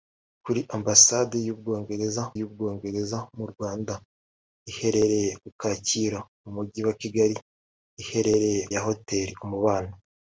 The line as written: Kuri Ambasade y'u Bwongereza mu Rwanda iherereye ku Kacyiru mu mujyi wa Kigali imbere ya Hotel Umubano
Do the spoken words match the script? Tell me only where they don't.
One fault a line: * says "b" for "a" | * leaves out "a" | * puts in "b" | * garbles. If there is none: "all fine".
* puts in "y'u Bwongereza"
* says "iherereye" for "imbere"